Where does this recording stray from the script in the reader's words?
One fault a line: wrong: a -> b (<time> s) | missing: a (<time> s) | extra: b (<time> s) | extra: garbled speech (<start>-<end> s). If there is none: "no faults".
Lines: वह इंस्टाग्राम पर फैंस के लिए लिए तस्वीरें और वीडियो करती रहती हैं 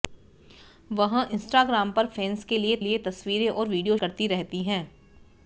no faults